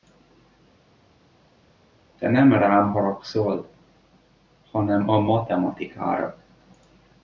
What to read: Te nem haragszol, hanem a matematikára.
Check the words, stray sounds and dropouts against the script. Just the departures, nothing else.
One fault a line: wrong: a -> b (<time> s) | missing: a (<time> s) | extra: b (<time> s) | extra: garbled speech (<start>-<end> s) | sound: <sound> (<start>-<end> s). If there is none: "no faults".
extra: rám (2.5 s)